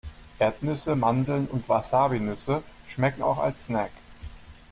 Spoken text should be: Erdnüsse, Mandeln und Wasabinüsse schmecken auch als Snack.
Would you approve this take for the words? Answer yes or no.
yes